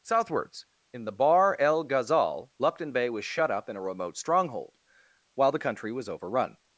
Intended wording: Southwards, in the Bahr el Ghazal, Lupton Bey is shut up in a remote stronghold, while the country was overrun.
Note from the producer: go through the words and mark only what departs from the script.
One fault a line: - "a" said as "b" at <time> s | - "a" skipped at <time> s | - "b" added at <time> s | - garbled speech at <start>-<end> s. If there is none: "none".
- "is" said as "was" at 3.1 s